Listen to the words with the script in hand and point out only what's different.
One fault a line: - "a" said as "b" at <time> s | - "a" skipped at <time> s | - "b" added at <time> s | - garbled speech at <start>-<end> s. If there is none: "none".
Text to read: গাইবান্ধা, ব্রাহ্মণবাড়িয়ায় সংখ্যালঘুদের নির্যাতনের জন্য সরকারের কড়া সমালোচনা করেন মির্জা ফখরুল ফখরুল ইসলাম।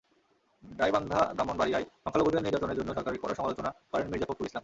- "ফখরুল" skipped at 4.5 s